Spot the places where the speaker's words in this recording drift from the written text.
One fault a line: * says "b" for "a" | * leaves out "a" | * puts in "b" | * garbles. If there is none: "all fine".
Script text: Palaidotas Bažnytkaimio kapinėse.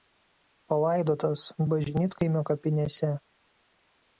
all fine